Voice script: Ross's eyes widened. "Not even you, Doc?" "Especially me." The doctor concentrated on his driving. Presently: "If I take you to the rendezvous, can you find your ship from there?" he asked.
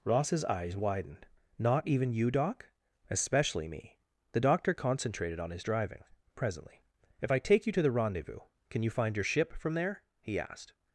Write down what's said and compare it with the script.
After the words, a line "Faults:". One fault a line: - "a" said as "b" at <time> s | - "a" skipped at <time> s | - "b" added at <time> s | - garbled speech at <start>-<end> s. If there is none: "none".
Ross's eyes widened. "Not even you, Doc?" "Especially me." The doctor concentrated on his driving. Presently: "If I take you to the rendezvous, can you find your ship from there?" he asked.
Faults:
none